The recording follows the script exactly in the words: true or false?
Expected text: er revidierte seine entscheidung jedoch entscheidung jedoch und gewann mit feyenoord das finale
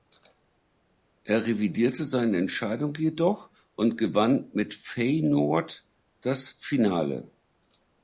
false